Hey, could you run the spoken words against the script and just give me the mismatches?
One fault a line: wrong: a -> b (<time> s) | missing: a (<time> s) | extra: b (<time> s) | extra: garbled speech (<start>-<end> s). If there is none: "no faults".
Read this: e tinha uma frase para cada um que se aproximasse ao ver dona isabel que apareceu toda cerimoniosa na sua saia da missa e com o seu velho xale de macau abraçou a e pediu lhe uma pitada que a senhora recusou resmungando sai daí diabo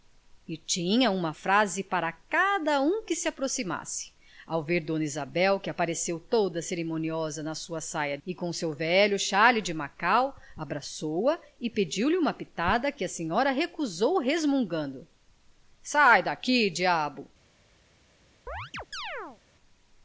missing: da missa (8.2 s)